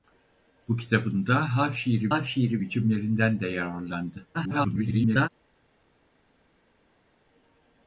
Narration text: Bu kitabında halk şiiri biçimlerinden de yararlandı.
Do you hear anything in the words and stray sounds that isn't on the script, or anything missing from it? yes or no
yes